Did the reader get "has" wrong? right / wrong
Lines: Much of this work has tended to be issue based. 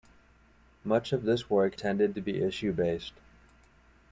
wrong